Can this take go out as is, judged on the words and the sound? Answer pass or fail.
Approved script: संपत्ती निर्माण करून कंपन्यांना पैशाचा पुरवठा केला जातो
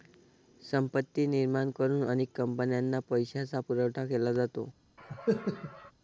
fail